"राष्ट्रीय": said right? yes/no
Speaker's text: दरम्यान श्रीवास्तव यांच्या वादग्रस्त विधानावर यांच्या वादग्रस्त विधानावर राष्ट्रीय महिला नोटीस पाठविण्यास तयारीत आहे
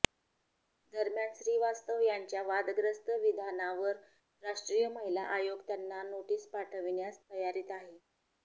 no